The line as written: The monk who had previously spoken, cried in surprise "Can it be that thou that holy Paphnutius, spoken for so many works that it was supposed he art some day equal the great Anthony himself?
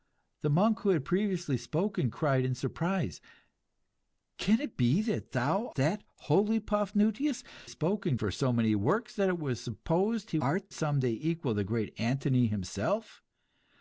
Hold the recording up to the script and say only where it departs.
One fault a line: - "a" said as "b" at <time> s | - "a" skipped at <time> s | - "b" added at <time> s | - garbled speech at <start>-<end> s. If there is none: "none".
none